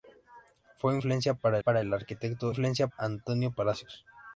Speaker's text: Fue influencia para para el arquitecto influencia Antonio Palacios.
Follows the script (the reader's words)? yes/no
yes